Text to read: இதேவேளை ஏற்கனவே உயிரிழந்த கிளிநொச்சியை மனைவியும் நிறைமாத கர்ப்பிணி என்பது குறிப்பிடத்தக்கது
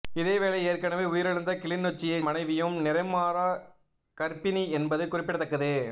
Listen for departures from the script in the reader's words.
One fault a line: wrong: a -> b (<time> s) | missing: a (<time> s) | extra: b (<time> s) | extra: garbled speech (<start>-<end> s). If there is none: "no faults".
no faults